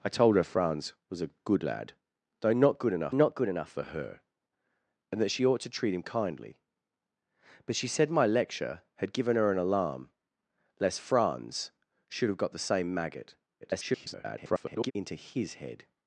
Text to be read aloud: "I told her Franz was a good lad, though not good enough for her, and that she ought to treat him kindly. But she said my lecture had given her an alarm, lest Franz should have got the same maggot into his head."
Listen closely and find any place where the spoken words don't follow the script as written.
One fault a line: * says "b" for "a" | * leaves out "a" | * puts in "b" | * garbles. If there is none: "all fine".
* puts in "not good enough"
* garbles